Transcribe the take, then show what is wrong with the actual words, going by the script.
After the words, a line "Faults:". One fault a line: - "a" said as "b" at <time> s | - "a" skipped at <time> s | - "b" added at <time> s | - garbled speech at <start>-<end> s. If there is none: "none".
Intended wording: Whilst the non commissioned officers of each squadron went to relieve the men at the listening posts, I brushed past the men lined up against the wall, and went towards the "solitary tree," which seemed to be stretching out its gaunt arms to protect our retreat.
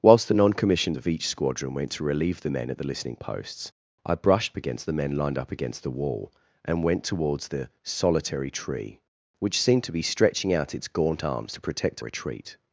Whilst the non commissioned of each squadron went to relieve the men at the listening posts, I brushed against the men lined up against the wall, and went towards the "solitary tree," which seemed to be stretching out its gaunt arms to protect retreat.
Faults:
- "officers" skipped at 1.0 s
- "past" said as "against" at 4.6 s
- "our" skipped at 12.0 s